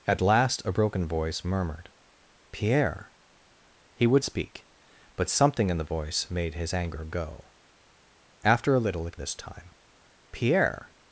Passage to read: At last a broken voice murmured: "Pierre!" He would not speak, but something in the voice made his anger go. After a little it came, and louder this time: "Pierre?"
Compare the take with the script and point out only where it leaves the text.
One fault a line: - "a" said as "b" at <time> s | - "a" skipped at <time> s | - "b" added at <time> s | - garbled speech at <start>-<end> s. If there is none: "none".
- "not" skipped at 4.2 s
- "came and louder" skipped at 9.2 s